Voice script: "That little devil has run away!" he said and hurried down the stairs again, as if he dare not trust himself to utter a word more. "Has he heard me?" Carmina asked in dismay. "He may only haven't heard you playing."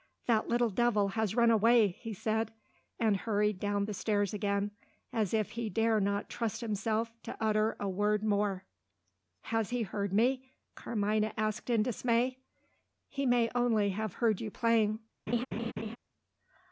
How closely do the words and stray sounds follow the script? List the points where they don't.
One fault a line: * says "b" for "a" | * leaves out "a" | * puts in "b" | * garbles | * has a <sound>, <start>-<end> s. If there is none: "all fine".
* says "have" for "haven't"
* has a laugh, 15.3-16.0 s